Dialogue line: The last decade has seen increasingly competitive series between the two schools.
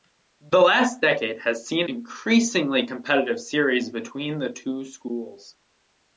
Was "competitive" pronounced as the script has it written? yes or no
yes